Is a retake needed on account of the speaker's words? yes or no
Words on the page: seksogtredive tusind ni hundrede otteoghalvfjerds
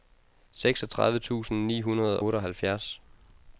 no